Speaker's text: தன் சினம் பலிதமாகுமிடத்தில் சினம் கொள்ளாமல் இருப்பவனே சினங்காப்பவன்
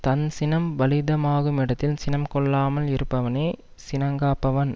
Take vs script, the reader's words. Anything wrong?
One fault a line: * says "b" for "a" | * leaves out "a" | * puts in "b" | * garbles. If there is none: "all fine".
all fine